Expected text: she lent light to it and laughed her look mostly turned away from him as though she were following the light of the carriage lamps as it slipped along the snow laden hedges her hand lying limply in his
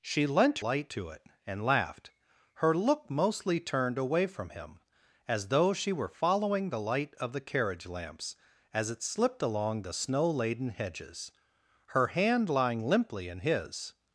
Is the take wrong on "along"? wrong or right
right